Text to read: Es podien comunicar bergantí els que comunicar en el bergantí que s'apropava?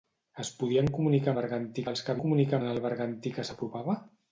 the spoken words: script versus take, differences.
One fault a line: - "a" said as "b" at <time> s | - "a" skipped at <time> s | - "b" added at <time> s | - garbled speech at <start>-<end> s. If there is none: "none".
none